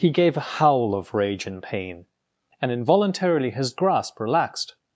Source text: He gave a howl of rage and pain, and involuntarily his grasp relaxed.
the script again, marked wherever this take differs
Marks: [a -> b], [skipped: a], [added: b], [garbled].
He gave a howl of rage and pain, and involuntarily his grasp relaxed.